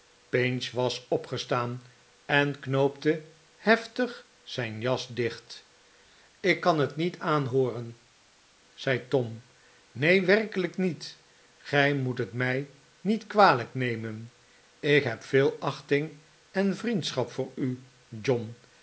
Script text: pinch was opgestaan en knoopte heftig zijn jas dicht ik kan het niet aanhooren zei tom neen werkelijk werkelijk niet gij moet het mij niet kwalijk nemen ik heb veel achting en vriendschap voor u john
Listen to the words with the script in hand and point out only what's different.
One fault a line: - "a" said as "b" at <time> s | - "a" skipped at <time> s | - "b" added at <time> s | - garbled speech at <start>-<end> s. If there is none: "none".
- "werkelijk" skipped at 10.8 s